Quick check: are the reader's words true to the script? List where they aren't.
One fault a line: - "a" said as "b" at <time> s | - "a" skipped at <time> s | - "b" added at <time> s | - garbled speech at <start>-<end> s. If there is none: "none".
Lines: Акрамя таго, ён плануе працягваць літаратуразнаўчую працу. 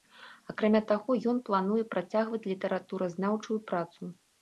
none